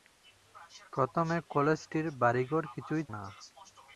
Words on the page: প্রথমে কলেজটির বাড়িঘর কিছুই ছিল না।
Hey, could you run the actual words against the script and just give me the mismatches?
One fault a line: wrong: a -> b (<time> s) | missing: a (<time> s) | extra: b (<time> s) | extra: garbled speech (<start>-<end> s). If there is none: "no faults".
missing: ছিল (3.0 s)